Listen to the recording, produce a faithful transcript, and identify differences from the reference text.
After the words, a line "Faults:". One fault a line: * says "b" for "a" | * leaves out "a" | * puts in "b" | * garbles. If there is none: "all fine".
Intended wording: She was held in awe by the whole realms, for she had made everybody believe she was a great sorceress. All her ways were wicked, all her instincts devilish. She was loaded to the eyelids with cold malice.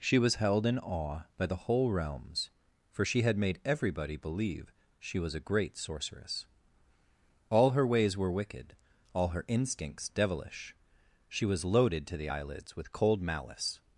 She was held in awe by the whole realms, for she had made everybody believe she was a great sorceress. All her ways were wicked, all her instincts devilish. She was loaded to the eyelids with cold malice.
Faults:
all fine